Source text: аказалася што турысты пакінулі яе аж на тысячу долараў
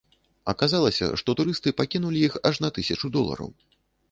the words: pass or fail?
fail